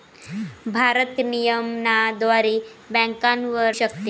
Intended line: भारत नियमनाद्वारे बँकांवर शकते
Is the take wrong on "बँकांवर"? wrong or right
right